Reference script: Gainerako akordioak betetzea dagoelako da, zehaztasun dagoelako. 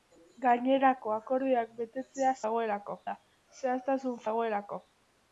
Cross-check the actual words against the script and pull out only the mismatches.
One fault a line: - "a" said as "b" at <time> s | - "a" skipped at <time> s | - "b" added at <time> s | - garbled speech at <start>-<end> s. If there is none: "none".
none